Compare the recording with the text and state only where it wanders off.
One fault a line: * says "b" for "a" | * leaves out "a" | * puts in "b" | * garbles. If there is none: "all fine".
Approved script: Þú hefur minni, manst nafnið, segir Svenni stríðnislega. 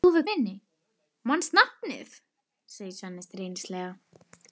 all fine